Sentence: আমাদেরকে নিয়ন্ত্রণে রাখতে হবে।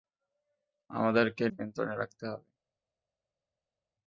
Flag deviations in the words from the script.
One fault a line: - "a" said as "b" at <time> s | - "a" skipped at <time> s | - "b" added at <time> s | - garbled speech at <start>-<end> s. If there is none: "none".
none